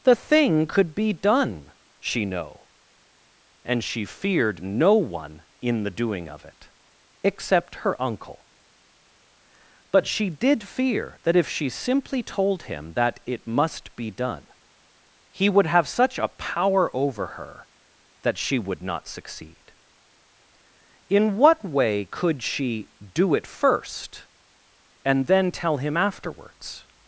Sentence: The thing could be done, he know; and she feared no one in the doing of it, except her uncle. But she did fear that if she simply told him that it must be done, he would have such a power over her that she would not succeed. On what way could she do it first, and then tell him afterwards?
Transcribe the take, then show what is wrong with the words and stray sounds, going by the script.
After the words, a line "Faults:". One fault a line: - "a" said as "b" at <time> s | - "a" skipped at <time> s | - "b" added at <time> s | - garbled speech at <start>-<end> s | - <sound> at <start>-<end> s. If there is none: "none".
The thing could be done, she know; and she feared no one in the doing of it, except her uncle. But she did fear that if she simply told him that it must be done, he would have such a power over her that she would not succeed. In what way could she do it first, and then tell him afterwards?
Faults:
- "he" said as "she" at 2.0 s
- "On" said as "In" at 21.1 s